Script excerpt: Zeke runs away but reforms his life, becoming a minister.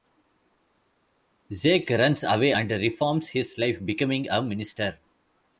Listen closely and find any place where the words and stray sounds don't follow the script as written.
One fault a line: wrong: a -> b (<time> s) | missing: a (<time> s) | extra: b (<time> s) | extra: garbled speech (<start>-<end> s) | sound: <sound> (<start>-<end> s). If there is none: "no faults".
wrong: but -> and (2.5 s)